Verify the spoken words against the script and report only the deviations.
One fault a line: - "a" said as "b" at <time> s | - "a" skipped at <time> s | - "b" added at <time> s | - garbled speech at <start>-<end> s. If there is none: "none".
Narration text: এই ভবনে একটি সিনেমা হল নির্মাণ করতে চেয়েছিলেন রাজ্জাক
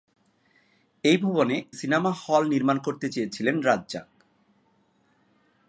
- "একটি" skipped at 1.6 s